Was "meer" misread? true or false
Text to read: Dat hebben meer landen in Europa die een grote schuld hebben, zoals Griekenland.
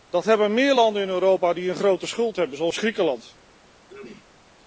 false